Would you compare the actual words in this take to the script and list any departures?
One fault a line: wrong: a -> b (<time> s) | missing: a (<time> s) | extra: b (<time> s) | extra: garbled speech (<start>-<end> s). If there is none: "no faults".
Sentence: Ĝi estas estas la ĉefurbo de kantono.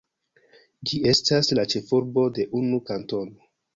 missing: estas (1.5 s)
extra: unu (2.6 s)